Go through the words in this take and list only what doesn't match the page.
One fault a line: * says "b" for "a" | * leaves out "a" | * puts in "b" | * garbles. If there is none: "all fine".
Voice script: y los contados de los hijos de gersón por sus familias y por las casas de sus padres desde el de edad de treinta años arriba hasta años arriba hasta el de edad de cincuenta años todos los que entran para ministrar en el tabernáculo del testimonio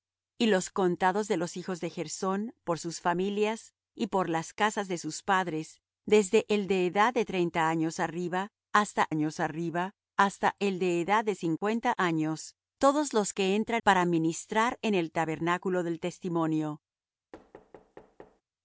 all fine